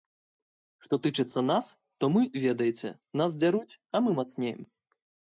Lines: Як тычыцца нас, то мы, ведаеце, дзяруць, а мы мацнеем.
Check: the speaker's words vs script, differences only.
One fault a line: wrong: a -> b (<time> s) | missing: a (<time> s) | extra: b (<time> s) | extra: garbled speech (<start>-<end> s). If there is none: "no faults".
wrong: Як -> Што (0.8 s)
extra: нас (3.2 s)